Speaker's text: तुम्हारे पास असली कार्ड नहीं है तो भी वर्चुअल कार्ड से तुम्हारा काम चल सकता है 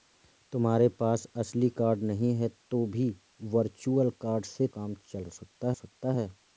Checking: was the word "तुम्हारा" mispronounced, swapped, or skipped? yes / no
yes